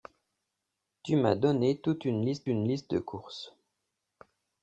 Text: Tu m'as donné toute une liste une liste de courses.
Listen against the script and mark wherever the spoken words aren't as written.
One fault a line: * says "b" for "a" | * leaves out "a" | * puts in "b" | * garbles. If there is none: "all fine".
all fine